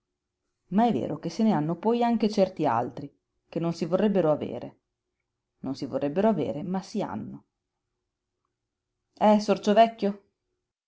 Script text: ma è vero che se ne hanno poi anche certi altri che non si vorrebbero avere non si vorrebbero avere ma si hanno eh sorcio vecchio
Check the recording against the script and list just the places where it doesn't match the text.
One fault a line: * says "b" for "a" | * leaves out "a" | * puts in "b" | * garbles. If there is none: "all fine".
all fine